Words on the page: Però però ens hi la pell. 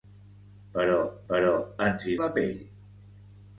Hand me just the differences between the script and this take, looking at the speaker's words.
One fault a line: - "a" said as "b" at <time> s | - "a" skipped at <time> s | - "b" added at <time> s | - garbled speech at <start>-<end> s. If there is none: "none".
none